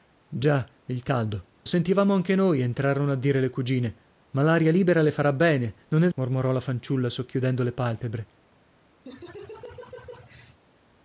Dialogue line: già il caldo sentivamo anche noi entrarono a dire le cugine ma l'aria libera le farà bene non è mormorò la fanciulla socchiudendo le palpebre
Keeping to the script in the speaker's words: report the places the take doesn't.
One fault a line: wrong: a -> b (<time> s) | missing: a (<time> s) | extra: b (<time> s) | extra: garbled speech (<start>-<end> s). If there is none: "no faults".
no faults